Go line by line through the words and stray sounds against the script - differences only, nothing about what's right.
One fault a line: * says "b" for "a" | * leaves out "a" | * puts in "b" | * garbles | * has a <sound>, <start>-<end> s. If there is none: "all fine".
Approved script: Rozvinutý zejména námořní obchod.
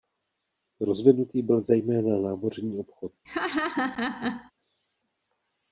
* puts in "byl"
* has a laugh, 3.2-4.5 s